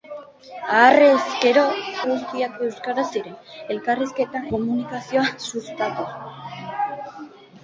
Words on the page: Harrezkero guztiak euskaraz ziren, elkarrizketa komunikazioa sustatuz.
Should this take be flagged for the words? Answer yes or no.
no